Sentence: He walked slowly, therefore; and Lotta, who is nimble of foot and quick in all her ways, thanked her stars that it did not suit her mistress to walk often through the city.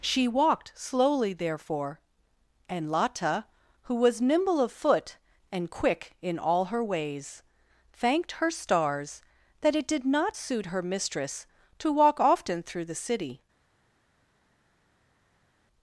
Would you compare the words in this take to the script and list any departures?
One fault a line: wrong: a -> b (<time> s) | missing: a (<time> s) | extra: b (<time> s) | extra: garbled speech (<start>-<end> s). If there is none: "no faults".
wrong: He -> She (0.0 s)
wrong: is -> was (3.9 s)